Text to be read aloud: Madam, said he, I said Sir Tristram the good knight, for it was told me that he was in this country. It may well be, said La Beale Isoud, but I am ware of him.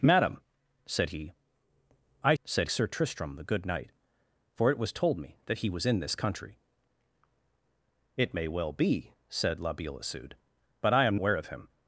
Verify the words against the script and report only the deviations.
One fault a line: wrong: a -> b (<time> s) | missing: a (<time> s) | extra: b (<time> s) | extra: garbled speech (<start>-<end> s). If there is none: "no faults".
no faults